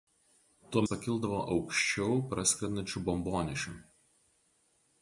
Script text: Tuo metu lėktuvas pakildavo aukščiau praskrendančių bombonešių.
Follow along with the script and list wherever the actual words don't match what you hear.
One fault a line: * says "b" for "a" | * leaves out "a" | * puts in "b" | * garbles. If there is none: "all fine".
* leaves out "metu lėktuvas"